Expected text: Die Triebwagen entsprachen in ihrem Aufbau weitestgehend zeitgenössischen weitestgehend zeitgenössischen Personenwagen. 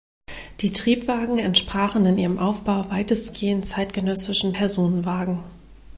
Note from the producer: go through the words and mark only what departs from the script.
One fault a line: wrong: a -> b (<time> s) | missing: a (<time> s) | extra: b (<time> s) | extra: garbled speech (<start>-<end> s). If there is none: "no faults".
missing: weitestgehend zeitgenössischen (4.5 s)